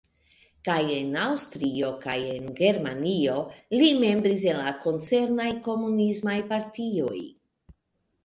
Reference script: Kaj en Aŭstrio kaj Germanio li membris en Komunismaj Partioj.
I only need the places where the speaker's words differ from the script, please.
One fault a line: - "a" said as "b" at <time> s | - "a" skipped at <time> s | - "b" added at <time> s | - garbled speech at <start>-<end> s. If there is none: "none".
- "en" added at 2.3 s
- "la koncernaj" added at 4.6 s